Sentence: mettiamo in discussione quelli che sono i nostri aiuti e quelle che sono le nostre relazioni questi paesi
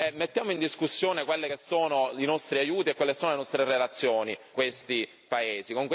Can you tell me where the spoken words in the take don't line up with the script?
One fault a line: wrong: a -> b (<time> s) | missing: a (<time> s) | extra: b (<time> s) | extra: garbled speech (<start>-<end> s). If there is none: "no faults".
no faults